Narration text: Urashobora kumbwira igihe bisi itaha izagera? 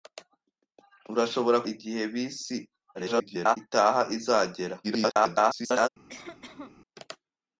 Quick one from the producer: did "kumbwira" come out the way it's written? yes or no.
no